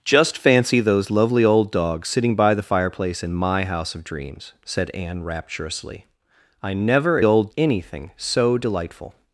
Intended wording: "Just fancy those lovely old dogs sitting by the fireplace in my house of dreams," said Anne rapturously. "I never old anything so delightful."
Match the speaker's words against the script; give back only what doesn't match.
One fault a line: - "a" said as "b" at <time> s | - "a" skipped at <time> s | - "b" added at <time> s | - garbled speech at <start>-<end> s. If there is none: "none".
none